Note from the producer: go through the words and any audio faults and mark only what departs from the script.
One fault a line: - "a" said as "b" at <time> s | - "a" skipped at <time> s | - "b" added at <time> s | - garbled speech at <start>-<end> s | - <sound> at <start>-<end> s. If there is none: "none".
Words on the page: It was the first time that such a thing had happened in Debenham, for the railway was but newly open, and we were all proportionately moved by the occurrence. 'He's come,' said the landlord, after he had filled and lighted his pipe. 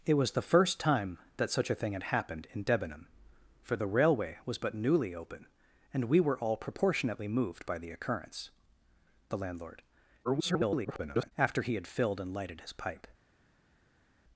- "He's come said" skipped at 8.5 s
- garbled speech at 10.2-11.3 s